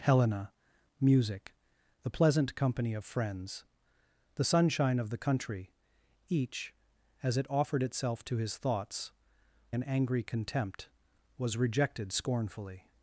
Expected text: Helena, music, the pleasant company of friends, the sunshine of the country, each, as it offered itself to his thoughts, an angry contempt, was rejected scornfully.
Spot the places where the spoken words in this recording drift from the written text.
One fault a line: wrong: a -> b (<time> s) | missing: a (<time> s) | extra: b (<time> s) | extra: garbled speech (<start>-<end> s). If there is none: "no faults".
no faults